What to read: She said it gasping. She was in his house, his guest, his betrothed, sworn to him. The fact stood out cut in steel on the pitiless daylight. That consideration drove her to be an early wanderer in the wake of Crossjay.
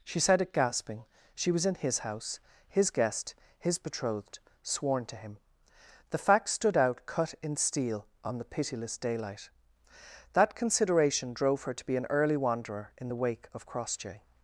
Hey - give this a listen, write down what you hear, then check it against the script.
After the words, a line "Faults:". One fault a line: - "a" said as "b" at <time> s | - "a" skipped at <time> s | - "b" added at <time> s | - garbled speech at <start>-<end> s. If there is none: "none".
She said it gasping. She was in his house, his guest, his betrothed, sworn to him. The fact stood out cut in steel on the pitiless daylight. That consideration drove her to be an early wanderer in the wake of Crossjay.
Faults:
none